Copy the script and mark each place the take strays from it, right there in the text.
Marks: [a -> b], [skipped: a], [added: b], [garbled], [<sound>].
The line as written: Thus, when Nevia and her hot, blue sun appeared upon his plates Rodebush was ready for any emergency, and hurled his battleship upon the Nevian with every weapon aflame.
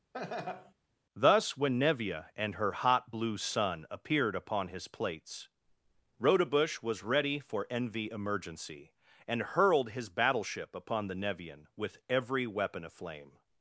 [laugh] Thus, when Nevia and her hot, blue sun appeared upon his plates Rodebush was ready for [any -> envy] emergency, and hurled his battleship upon the Nevian with every weapon aflame.